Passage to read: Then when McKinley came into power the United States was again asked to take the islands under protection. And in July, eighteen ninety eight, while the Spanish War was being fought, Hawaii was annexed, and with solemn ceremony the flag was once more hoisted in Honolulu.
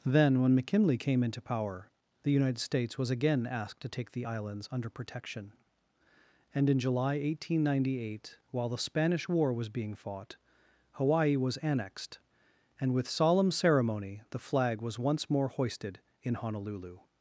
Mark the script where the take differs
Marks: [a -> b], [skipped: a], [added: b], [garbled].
Then when McKinley came into power the United States was again asked to take the islands under protection. And in July, eighteen ninety eight, while the Spanish War was being fought, Hawaii was annexed, and with solemn ceremony the flag was once more hoisted in Honolulu.